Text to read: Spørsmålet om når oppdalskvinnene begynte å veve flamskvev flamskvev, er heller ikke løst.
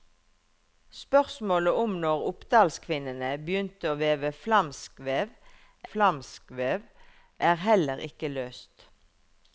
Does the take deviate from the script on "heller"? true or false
false